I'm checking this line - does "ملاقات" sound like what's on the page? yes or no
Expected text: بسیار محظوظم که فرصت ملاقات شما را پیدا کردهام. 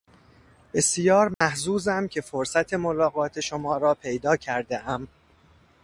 yes